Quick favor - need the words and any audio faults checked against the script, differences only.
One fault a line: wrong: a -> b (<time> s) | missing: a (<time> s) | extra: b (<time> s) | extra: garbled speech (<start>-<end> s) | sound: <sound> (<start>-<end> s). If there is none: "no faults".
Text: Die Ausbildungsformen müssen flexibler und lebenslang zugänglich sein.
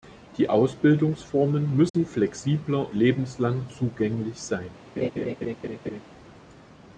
sound: dropout (1.9-1.9 s)
missing: und (2.9 s)
sound: laugh (5.0-6.0 s)